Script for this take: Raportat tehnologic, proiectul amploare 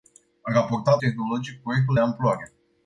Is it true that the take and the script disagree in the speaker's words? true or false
false